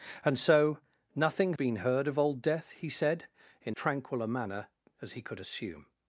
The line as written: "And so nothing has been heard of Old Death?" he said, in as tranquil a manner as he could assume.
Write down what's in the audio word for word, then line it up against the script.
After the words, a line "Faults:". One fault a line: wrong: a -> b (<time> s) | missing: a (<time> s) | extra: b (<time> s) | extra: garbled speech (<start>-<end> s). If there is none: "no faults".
"And so nothing been heard of Old Death?" he said, in tranquil a manner as he could assume.
Faults:
missing: has (1.5 s)
missing: as (3.7 s)